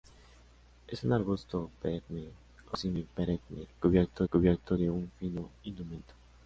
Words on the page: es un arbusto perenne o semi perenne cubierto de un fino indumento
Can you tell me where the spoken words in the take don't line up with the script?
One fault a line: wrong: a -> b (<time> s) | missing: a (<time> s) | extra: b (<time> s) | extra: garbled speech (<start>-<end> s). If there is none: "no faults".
extra: cubierto (4.3 s)